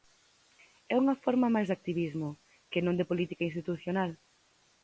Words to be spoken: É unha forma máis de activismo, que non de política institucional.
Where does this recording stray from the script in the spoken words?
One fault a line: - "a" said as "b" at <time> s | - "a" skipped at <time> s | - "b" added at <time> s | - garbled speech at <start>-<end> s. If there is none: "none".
none